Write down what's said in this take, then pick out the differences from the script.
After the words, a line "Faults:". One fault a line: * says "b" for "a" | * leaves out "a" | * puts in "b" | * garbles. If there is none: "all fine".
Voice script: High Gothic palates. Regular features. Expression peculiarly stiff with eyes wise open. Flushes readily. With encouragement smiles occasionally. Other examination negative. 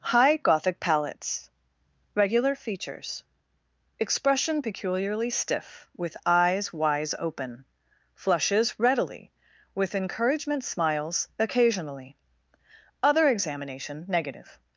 High Gothic palates. Regular features. Expression peculiarly stiff with eyes wise open. Flushes readily. With encouragement smiles occasionally. Other examination negative.
Faults:
all fine